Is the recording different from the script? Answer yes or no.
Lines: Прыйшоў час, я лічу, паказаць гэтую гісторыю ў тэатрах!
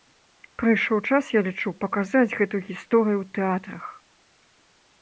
no